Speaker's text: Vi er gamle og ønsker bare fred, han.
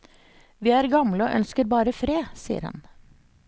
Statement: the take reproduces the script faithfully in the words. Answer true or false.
false